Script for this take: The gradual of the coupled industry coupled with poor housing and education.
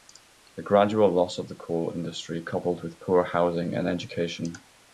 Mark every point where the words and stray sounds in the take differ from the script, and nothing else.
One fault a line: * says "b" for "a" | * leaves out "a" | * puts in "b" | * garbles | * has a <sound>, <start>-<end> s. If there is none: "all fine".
* puts in "loss"
* says "coal" for "coupled"